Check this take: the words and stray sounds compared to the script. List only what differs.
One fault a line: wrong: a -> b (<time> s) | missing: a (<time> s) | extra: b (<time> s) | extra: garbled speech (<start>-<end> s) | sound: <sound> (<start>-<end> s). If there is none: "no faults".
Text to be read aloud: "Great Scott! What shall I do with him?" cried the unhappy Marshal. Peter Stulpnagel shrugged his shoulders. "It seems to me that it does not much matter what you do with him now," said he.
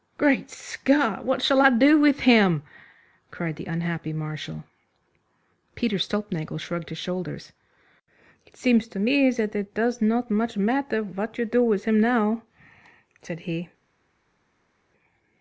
no faults